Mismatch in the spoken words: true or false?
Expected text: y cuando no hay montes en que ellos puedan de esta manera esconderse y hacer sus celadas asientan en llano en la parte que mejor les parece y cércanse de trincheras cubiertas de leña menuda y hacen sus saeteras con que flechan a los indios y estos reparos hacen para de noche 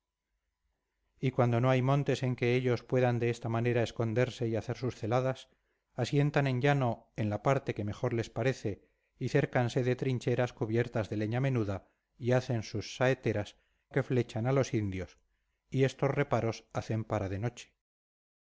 true